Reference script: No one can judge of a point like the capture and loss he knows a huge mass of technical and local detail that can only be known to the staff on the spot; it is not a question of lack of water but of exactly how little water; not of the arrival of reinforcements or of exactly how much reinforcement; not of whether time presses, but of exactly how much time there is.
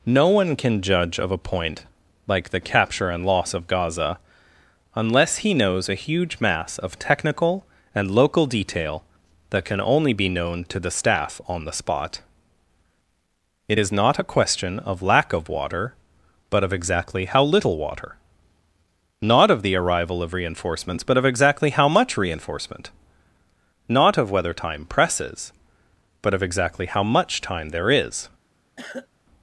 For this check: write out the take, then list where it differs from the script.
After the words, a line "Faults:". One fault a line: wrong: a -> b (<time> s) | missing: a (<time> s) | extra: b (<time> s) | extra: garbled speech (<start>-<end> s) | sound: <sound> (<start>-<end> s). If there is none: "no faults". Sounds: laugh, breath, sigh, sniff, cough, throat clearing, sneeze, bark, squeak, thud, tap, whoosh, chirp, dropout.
No one can judge of a point like the capture and loss of Gaza, unless he knows a huge mass of technical and local detail that can only be known to the staff on the spot; it is not a question of lack of water but of exactly how little water; not of the arrival of reinforcements but of exactly how much reinforcement; not of whether time presses, but of exactly how much time there is.
Faults:
extra: of Gaza unless (3.5 s)
wrong: or -> but (21.0 s)
sound: cough (28.8-29.1 s)